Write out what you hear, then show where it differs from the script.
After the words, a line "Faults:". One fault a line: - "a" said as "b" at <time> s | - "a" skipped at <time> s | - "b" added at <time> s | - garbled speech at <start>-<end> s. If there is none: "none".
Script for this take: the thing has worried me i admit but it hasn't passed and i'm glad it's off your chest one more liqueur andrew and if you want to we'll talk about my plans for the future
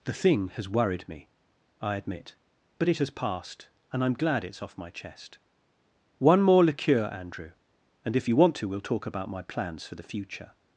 the thing has worried me i admit but it has passed and i'm glad it's off my chest one more liqueur andrew and if you want to we'll talk about my plans for the future
Faults:
- "hasn't" said as "has" at 3.0 s
- "your" said as "my" at 4.8 s